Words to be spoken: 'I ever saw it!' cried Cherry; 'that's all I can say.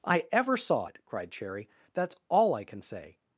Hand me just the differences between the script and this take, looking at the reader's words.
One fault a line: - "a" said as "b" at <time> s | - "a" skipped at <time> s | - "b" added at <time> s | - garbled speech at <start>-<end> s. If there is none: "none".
none